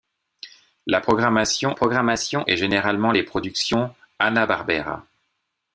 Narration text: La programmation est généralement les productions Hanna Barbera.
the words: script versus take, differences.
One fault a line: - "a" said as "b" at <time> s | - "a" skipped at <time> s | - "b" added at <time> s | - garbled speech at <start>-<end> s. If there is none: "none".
- "programmation" added at 1.7 s